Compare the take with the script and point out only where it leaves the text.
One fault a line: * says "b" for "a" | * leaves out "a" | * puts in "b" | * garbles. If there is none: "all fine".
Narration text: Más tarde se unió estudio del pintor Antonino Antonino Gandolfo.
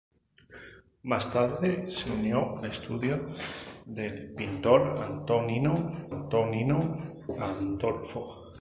all fine